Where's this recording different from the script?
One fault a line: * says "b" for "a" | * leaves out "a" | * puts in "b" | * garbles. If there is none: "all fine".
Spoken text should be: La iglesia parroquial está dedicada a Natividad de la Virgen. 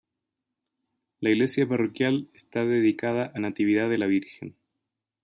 all fine